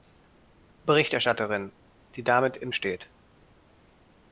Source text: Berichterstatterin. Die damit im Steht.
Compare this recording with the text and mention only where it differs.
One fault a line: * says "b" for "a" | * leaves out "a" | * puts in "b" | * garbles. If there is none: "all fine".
all fine